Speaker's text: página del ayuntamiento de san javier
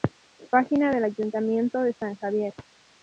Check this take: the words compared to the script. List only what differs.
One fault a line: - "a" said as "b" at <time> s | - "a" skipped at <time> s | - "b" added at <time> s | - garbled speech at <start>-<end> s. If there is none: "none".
none